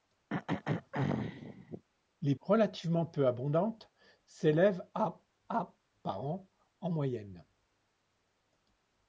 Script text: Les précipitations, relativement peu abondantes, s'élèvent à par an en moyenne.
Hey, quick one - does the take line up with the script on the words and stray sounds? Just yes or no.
no